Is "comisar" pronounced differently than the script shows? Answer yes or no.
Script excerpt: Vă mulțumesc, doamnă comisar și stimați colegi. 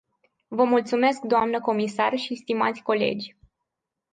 no